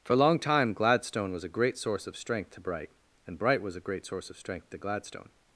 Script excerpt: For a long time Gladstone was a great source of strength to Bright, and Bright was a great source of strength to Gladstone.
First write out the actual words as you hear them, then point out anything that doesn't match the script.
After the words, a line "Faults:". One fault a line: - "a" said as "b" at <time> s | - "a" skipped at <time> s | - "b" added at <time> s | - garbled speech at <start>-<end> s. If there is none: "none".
For a long time Gladstone was a great source of strength to Bright, and Bright was a great source of strength to Gladstone.
Faults:
none